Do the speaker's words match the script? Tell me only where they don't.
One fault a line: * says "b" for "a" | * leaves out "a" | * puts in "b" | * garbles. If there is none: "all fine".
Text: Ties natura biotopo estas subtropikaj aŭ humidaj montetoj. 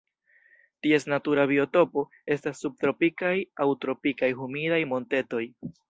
* puts in "tropikaj"